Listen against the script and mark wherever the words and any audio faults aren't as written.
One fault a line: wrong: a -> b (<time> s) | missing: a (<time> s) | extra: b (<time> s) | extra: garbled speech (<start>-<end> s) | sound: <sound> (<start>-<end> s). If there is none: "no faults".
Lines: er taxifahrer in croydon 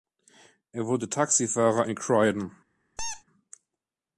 extra: wurde (0.9 s)
sound: squeak (3.0-3.2 s)